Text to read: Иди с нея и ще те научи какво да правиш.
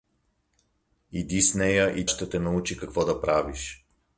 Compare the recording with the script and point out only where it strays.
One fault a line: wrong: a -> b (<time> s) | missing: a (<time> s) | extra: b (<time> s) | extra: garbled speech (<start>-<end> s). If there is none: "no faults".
no faults